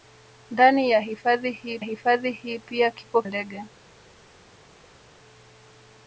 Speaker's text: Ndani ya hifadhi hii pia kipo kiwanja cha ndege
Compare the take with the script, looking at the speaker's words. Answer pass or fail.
fail